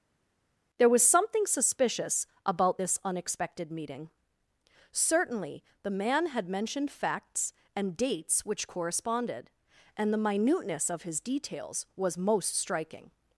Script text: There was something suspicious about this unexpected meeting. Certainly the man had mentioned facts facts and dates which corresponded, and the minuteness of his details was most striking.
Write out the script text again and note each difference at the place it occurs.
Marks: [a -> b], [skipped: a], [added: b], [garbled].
There was something suspicious about this unexpected meeting. Certainly the man had mentioned facts [skipped: facts] and dates which corresponded, and the minuteness of his details was most striking.